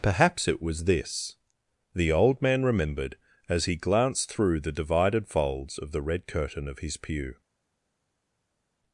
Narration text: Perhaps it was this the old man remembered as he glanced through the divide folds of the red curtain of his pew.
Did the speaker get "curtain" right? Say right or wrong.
right